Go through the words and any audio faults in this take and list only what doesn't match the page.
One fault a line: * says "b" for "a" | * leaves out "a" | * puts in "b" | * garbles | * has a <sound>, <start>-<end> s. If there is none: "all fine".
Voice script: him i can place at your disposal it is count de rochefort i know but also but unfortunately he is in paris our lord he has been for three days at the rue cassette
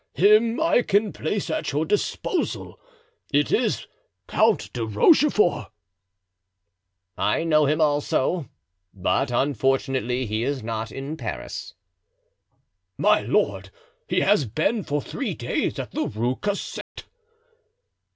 * says "him" for "but"
* puts in "not"
* says "my" for "our"
* has a dropout, 16.8-17.0 s